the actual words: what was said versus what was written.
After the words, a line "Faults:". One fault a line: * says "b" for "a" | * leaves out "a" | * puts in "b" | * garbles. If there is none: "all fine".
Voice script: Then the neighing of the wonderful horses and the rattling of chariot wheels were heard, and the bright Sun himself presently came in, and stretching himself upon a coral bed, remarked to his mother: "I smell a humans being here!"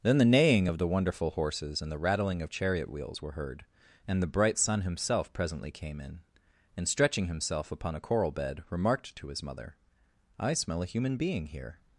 Then the neighing of the wonderful horses and the rattling of chariot wheels were heard, and the bright Sun himself presently came in, and stretching himself upon a coral bed, remarked to his mother: "I smell a human being here!"
Faults:
* says "human" for "humans"